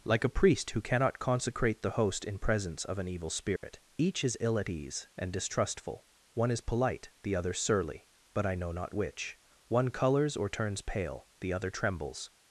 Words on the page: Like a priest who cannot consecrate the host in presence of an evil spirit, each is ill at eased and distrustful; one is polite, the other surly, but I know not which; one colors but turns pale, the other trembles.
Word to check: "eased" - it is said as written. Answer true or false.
false